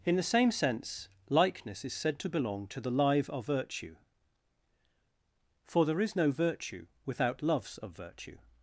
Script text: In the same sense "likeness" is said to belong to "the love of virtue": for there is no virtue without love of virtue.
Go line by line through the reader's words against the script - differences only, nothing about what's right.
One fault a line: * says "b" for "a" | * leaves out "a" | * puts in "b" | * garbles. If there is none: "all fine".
* says "live" for "love"
* says "loves" for "love"